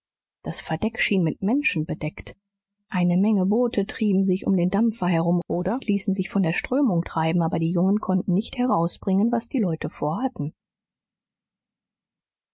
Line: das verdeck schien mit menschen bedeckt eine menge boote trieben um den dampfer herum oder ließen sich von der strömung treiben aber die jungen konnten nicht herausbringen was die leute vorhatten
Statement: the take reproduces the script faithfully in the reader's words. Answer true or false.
false